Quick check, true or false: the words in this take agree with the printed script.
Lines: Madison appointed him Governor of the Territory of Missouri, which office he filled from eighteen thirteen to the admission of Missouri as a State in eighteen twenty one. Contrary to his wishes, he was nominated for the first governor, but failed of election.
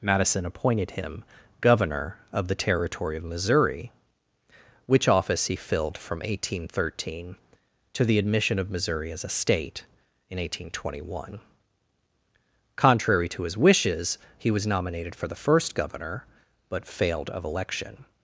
true